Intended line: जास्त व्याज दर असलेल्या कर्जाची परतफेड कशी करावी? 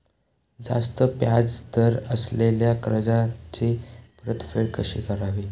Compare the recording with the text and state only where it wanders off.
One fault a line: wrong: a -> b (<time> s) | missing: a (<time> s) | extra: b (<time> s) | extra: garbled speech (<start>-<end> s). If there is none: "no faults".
no faults